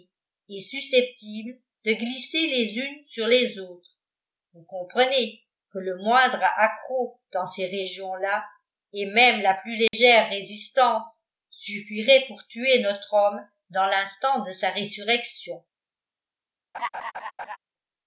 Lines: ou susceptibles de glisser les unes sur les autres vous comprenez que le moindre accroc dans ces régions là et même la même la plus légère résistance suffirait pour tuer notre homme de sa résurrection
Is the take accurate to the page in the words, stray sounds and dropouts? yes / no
no